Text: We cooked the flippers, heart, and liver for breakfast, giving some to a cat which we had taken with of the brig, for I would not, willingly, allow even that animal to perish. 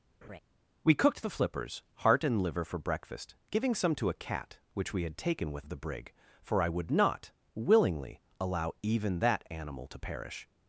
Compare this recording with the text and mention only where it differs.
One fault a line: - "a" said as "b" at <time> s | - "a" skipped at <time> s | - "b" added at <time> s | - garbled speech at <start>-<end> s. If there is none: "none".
none